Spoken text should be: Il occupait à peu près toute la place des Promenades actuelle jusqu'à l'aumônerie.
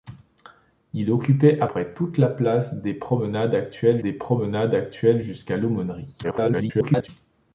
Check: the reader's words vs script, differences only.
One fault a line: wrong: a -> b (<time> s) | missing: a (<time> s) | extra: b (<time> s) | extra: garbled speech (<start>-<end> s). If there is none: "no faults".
missing: peu (1.7 s)
extra: des Promenades actuelle (4.0 s)
extra: garbled speech (6.2-7.1 s)